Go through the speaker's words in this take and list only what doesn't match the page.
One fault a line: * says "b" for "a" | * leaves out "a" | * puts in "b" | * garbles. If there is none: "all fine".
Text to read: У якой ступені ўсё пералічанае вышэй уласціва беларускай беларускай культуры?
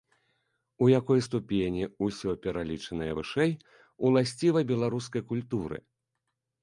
* leaves out "беларускай"